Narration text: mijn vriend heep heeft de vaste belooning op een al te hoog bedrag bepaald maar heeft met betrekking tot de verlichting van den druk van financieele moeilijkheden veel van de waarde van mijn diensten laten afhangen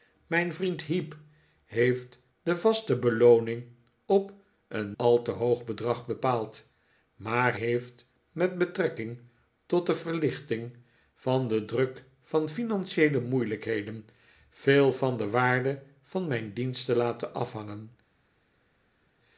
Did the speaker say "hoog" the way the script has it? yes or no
yes